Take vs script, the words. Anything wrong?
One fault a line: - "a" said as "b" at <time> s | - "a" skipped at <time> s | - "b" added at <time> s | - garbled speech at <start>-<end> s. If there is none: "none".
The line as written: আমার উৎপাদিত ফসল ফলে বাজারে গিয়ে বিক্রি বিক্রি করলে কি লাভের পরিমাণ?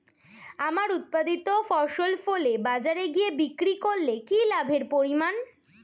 - "বিক্রি" skipped at 3.7 s